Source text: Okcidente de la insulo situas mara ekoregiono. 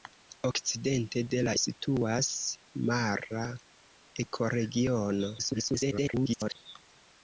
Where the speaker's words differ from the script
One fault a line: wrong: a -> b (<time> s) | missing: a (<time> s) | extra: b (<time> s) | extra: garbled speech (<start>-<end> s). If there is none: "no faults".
missing: insulo (1.5 s)
extra: garbled speech (5.4-6.6 s)